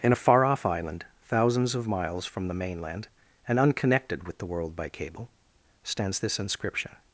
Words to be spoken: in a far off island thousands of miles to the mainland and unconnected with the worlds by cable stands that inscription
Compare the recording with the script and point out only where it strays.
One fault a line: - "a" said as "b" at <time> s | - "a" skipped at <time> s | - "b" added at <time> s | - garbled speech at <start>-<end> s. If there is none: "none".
- "to" said as "from" at 2.3 s
- "worlds" said as "world" at 4.5 s
- "that" said as "this" at 6.2 s